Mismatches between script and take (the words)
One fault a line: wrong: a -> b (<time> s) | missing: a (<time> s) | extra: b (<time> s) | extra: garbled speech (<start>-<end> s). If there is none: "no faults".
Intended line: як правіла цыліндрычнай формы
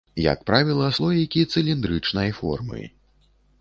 extra: слоікі (1.0 s)